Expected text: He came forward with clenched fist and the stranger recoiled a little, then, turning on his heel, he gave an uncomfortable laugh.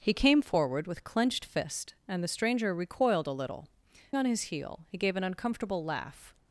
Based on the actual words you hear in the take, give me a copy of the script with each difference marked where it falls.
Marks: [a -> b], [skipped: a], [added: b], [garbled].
He came forward with clenched fist and the stranger recoiled a little, [skipped: then, turning] on his heel, he gave an uncomfortable laugh.